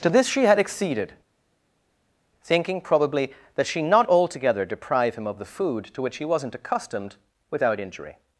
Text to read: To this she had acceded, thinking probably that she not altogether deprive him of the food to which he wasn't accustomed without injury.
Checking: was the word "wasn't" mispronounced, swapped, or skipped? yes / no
no